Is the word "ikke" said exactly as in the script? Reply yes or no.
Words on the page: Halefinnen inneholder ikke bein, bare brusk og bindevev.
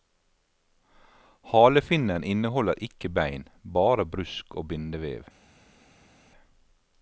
yes